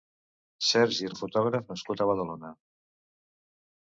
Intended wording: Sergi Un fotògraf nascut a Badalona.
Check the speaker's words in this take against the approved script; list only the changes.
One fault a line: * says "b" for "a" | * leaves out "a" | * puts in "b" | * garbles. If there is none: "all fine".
all fine